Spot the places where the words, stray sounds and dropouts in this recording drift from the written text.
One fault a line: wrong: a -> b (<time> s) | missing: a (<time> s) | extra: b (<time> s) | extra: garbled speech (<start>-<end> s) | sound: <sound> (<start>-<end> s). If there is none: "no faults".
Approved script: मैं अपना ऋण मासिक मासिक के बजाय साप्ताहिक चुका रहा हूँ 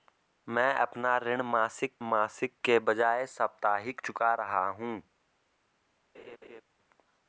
sound: laugh (6.1-6.6 s)